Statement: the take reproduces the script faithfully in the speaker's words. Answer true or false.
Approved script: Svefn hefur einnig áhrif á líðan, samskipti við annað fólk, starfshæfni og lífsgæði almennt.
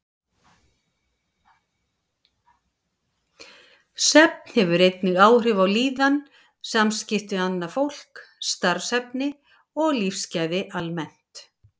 true